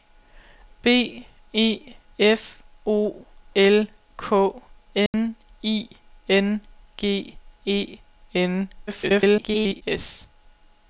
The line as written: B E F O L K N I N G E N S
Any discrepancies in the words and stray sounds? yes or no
yes